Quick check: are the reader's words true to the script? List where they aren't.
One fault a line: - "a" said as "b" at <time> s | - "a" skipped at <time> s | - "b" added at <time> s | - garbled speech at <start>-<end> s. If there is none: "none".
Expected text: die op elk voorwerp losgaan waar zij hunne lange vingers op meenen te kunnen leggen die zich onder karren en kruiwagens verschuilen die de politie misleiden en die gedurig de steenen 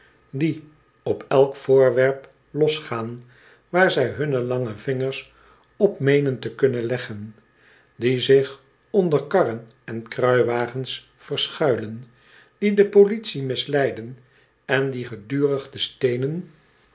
none